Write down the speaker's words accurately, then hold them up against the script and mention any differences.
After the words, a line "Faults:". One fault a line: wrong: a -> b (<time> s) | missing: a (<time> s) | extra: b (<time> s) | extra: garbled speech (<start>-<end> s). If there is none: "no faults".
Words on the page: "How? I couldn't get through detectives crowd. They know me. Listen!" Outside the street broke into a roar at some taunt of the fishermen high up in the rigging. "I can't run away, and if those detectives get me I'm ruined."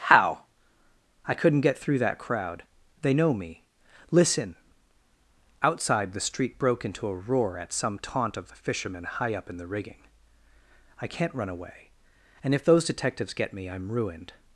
"How? I couldn't get through that crowd. They know me. Listen!" Outside the street broke into a roar at some taunt of the fishermen high up in the rigging. "I can't run away, and if those detectives get me I'm ruined."
Faults:
wrong: detectives -> that (2.0 s)